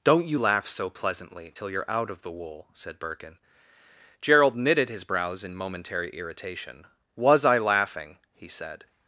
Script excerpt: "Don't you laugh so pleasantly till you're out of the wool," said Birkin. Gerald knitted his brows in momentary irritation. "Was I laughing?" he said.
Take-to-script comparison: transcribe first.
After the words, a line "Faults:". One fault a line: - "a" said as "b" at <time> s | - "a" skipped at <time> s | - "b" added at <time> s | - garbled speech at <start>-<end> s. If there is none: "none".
"Don't you laugh so pleasantly till you're out of the wool," said Birkin. Gerald knitted his brows in momentary irritation. "Was I laughing?" he said.
Faults:
none